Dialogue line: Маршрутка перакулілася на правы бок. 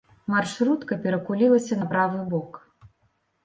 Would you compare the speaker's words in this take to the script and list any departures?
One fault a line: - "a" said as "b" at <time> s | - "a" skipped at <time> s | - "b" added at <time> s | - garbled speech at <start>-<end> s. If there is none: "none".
none